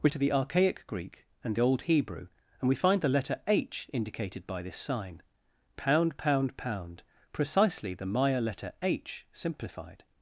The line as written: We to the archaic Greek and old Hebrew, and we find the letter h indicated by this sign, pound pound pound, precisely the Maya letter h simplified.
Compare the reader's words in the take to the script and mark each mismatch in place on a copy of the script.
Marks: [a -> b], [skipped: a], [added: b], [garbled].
We to the archaic Greek and old Hebrew, and we find the letter h indicated by this sign, pound pound pound, precisely the Maya letter h simplified.